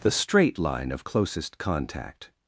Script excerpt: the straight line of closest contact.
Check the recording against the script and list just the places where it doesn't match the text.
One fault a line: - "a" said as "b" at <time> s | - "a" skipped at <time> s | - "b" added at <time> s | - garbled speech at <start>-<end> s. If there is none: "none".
none